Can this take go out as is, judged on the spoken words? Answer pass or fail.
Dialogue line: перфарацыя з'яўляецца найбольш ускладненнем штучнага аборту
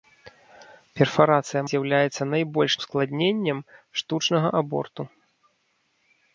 pass